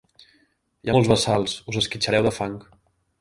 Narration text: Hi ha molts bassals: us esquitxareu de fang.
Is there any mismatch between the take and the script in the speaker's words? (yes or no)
no